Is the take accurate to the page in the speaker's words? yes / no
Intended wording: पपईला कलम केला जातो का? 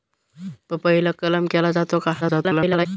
no